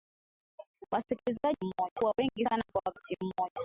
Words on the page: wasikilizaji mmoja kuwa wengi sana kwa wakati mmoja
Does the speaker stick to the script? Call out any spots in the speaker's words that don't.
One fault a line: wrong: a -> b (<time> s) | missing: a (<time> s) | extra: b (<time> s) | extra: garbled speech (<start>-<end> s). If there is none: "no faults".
no faults